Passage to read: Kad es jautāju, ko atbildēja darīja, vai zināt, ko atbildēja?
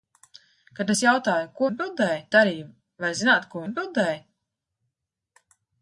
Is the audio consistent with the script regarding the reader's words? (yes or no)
yes